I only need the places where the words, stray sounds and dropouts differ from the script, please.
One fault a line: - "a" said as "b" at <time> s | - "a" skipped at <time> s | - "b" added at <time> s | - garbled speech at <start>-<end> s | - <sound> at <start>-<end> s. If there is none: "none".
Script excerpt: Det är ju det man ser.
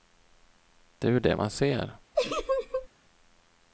- laugh at 2.1-2.9 s